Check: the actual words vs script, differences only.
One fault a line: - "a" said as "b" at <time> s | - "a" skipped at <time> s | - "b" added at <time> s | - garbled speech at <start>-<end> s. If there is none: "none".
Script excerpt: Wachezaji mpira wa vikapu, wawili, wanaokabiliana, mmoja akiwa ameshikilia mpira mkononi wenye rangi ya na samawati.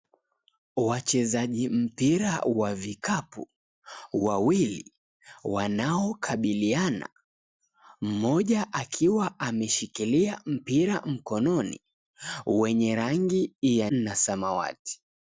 none